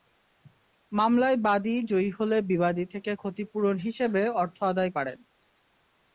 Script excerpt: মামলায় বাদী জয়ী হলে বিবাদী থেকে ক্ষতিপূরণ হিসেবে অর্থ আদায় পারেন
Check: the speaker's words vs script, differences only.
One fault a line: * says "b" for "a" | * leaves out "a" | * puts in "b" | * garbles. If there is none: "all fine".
all fine